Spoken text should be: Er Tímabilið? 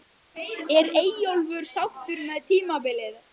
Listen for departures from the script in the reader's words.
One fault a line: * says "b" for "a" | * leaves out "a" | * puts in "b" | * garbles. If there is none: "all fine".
* puts in "Eyjólfur sáttur með"